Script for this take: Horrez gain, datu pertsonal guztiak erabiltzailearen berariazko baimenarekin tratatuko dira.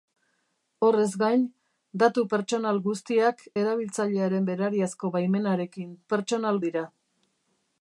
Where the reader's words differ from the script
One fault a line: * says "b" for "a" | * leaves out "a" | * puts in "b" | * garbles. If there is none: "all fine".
* says "pertsonal" for "tratatuko"